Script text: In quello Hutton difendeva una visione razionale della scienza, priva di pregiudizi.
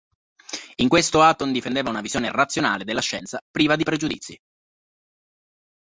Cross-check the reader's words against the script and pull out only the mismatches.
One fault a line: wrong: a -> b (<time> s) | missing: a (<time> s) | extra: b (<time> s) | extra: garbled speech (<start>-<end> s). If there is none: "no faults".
wrong: quello -> questo (0.9 s)